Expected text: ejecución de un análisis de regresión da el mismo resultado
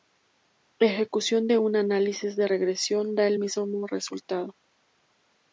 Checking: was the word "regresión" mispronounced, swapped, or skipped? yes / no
no